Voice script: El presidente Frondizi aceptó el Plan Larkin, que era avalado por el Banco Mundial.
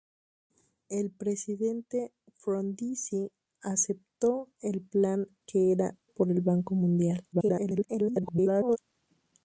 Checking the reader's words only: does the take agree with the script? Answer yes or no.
no